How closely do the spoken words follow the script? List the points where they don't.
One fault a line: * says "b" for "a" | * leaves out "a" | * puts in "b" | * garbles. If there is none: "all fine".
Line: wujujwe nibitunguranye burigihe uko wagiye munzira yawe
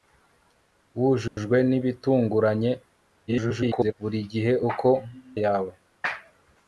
* garbles
* leaves out "wagiye munzira"